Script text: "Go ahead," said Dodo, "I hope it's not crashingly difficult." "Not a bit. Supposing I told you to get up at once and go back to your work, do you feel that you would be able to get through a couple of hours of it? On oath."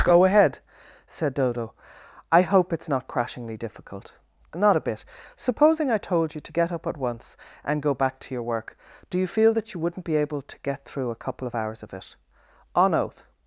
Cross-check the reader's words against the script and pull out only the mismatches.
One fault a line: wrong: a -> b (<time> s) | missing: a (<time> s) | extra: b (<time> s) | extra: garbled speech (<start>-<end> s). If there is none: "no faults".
wrong: would -> wouldn't (9.8 s)